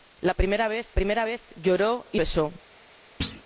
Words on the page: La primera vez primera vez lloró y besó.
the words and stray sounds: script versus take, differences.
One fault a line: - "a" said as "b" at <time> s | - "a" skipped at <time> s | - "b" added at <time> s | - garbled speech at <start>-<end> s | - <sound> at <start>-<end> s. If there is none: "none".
- thud at 3.2-3.4 s